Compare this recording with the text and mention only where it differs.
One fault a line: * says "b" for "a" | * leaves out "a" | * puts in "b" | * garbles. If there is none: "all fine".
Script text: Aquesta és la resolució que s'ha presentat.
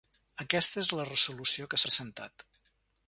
* leaves out "s'ha"